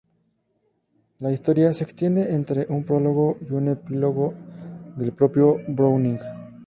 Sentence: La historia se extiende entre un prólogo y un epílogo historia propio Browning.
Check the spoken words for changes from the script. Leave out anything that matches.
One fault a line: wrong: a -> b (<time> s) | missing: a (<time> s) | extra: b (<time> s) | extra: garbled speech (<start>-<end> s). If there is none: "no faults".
wrong: historia -> del (5.0 s)